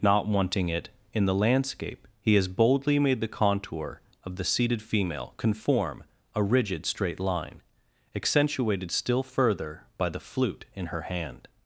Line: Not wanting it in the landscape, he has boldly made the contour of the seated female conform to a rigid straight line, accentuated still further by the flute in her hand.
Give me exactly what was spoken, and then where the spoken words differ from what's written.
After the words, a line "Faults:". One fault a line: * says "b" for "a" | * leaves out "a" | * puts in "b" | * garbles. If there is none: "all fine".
Not wanting it in the landscape, he has boldly made the contour of the seated female conform a rigid straight line, accentuated still further by the flute in her hand.
Faults:
* leaves out "to"